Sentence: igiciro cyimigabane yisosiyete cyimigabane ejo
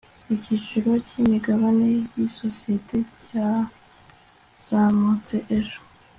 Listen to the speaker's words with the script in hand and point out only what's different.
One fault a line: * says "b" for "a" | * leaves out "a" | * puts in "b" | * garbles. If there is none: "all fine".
* says "cyazamutse" for "cyimigabane"